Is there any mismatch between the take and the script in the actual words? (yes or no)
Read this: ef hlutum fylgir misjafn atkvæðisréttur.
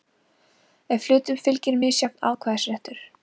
no